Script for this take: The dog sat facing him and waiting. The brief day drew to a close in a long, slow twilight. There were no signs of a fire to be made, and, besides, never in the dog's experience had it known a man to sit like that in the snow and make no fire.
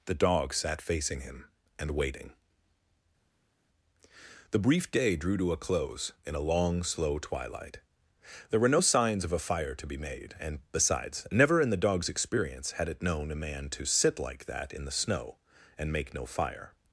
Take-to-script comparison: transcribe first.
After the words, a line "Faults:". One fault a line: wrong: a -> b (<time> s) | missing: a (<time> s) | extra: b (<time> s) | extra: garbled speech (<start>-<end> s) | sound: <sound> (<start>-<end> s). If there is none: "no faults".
The dog sat facing him and waiting. The brief day drew to a close in a long, slow twilight. There were no signs of a fire to be made, and, besides, never in the dog's experience had it known a man to sit like that in the snow and make no fire.
Faults:
no faults